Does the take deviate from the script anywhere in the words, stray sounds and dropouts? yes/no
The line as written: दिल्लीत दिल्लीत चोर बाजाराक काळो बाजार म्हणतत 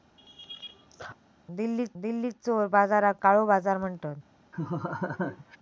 yes